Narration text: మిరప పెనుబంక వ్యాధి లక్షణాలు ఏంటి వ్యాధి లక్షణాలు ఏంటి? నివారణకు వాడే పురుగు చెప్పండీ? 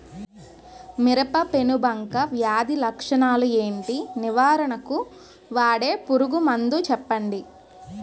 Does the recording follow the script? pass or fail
fail